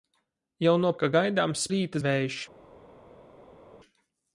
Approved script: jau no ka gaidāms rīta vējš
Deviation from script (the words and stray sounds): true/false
false